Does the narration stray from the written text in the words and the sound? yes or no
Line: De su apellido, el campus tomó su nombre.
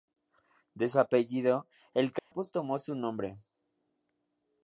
yes